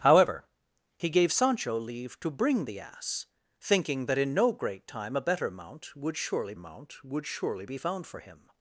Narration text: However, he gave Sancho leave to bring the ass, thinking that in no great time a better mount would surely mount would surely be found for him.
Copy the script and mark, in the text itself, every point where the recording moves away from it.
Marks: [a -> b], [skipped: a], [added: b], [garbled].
However, he gave Sancho leave to bring the ass, thinking that in no great time a better mount would surely mount would surely be found for him.